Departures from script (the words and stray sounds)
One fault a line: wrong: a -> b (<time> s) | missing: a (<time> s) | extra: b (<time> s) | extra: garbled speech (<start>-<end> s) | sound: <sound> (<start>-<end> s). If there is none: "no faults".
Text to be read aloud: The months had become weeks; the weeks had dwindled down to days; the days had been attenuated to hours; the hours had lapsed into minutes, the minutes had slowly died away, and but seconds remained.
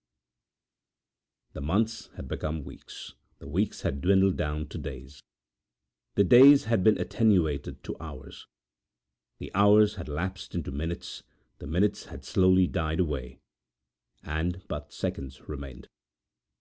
no faults